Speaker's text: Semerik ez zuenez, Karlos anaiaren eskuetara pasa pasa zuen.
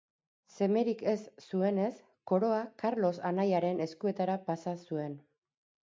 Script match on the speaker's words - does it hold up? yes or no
no